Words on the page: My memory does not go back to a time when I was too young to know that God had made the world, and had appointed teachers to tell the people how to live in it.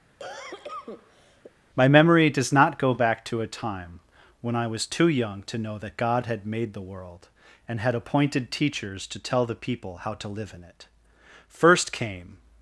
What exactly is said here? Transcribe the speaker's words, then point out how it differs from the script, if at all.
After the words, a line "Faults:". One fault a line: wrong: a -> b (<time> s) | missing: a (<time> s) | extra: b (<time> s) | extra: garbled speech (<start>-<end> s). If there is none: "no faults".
My memory does not go back to a time when I was too young to know that God had made the world, and had appointed teachers to tell the people how to live in it. First came
Faults:
extra: First came (11.5 s)